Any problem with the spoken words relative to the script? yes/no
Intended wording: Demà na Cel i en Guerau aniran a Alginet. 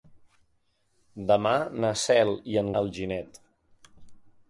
yes